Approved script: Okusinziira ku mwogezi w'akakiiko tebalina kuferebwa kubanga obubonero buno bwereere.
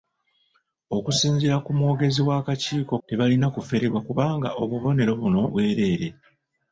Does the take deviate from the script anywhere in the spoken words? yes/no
no